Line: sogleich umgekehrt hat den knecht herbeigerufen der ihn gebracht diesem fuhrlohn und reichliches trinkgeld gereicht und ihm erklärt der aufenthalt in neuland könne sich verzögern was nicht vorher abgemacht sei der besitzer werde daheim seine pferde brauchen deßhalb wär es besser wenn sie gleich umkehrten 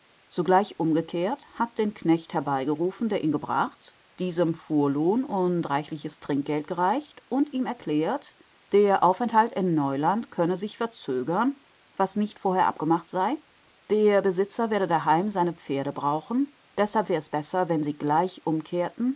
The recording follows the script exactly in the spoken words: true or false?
true